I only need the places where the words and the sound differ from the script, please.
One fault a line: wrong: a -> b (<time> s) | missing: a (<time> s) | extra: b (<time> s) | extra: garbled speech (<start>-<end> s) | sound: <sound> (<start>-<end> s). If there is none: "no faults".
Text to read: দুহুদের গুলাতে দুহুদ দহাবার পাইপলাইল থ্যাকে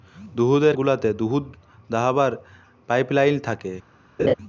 sound: laugh (4.2-4.3 s)